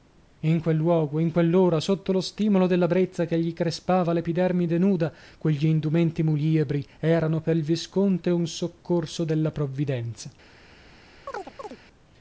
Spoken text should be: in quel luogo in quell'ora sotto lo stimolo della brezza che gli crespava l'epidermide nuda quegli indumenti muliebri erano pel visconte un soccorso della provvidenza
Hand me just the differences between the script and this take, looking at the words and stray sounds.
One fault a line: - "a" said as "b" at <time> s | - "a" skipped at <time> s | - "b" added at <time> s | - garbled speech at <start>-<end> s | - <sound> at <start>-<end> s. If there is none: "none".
- chirp at 11.3-11.8 s